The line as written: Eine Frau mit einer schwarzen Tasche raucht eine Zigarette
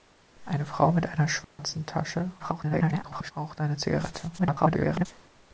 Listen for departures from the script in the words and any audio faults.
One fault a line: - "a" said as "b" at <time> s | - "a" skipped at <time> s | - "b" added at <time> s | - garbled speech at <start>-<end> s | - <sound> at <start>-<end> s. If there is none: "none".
- dropout at 1.4-1.6 s
- garbled speech at 2.4-3.3 s
- garbled speech at 4.4-5.1 s